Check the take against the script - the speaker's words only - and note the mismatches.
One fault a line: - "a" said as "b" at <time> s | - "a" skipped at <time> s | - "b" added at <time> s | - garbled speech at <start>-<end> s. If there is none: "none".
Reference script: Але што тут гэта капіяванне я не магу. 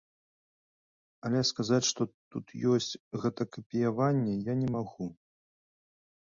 - "сказаць" added at 1.5 s
- "ёсць" added at 2.7 s